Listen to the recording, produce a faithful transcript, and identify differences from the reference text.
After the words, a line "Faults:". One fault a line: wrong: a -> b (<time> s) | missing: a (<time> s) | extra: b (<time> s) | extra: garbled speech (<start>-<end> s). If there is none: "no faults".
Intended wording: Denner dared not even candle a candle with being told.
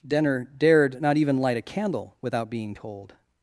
Denner dared not even light a candle without being told.
Faults:
wrong: candle -> light (1.4 s)
wrong: with -> without (2.2 s)